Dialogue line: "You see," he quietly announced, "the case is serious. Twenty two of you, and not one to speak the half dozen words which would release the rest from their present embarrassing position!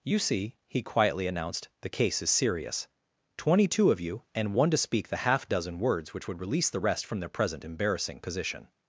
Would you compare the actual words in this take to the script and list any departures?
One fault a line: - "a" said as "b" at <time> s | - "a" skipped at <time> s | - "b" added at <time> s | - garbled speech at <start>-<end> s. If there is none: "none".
- "not" skipped at 4.5 s